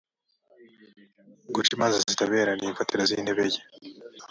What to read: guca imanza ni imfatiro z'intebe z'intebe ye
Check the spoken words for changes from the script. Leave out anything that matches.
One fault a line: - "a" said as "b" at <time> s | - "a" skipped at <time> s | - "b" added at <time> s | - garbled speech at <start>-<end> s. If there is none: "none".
- "zitabera" added at 2.1 s
- "z'intebe" skipped at 3.4 s